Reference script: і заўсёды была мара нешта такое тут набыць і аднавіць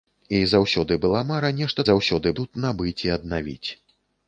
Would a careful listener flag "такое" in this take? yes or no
yes